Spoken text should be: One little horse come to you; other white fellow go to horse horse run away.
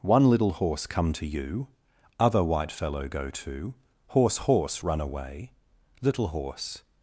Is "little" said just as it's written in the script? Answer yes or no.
yes